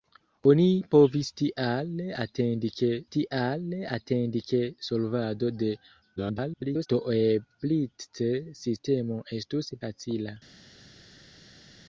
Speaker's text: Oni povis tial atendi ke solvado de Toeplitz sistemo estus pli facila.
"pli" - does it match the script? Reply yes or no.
no